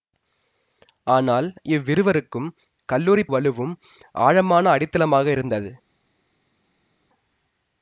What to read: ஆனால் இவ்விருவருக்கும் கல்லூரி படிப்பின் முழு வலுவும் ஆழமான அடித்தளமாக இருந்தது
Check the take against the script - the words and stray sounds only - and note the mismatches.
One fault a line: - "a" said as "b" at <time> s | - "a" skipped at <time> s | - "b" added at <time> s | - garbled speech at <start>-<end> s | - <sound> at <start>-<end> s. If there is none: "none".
- "படிப்பின் முழு" skipped at 3.2 s